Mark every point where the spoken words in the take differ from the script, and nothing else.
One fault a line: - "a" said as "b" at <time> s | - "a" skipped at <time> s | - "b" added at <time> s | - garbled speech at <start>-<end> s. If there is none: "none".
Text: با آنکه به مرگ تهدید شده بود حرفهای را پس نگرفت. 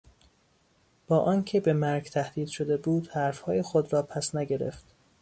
- "خود" added at 3.6 s